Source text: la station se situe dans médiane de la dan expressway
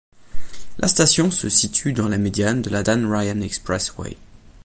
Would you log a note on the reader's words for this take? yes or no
yes